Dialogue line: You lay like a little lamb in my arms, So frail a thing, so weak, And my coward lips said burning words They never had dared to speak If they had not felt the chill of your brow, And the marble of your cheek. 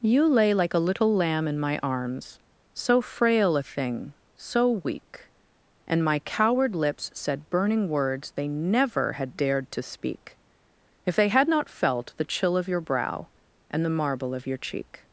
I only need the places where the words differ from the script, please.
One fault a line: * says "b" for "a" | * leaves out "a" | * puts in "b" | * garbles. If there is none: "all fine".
all fine